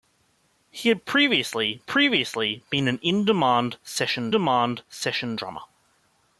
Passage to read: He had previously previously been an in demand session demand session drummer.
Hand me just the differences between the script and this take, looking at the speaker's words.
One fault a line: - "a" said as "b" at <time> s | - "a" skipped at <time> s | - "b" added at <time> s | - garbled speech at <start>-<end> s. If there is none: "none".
none